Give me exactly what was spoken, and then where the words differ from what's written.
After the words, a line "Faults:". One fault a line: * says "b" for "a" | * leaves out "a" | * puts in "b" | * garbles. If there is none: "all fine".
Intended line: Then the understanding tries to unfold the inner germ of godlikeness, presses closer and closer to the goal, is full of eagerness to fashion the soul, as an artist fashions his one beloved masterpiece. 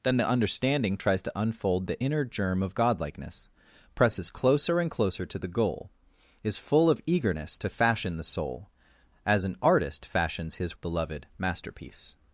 Then the understanding tries to unfold the inner germ of godlikeness, presses closer and closer to the goal, is full of eagerness to fashion the soul, as an artist fashions his beloved masterpiece.
Faults:
* leaves out "one"